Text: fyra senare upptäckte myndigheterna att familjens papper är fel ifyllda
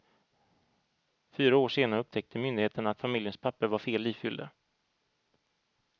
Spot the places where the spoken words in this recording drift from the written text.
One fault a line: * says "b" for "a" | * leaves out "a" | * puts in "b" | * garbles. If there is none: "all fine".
* puts in "år"
* says "var" for "är"